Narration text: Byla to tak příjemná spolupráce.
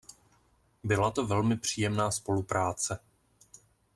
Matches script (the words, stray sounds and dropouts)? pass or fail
fail